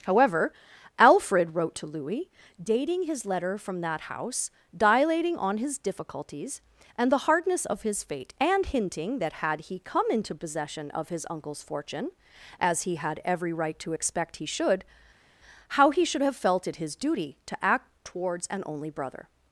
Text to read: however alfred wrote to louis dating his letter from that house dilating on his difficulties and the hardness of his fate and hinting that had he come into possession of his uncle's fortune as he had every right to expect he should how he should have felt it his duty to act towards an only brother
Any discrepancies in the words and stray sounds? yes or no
no